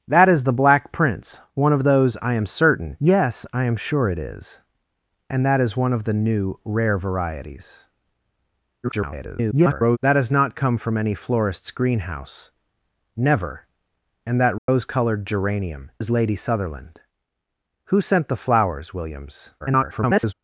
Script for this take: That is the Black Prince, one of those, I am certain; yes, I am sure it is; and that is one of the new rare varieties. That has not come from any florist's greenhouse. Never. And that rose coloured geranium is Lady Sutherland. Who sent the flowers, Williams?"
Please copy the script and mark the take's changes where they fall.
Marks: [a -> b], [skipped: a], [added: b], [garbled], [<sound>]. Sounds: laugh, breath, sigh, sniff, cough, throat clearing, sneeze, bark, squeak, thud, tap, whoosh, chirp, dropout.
That is the Black Prince, one of those, I am certain; yes, I am sure it is; and that is one of the new rare varieties. [garbled] That has not come from any florist's greenhouse. Never. And that rose [dropout] coloured geranium is Lady Sutherland. Who sent the flowers, Williams?" [garbled]